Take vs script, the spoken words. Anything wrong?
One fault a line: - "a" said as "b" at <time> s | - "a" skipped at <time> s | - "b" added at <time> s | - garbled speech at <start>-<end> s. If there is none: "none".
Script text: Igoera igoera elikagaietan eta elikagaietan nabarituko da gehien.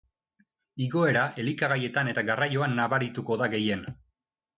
- "igoera" skipped at 1.2 s
- "elikagaietan" said as "garraioan" at 2.3 s